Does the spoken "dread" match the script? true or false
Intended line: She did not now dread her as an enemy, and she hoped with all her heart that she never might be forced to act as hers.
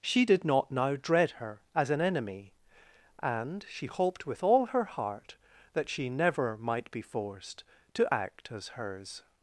true